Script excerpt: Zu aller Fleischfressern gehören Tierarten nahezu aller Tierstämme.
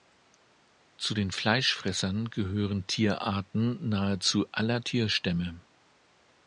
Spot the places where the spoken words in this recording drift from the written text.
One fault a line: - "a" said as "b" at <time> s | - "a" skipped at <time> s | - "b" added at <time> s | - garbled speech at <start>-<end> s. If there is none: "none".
- "aller" said as "den" at 1.1 s